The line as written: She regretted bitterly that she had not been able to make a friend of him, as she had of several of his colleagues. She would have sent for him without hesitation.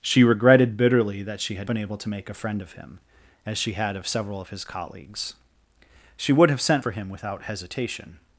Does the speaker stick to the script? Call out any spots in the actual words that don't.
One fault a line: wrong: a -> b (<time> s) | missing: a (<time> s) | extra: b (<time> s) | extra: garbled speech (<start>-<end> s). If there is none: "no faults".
missing: not (1.7 s)